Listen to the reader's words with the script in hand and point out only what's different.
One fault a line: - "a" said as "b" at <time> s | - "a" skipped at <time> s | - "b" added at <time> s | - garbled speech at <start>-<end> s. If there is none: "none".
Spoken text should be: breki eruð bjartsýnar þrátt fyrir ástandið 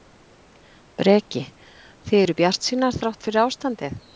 - "þið" added at 2.1 s